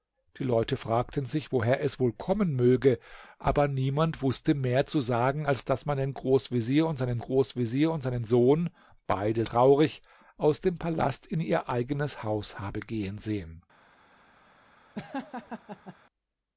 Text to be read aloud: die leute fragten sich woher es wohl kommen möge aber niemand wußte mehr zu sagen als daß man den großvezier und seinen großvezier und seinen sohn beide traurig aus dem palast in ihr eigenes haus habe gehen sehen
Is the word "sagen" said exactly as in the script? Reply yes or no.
yes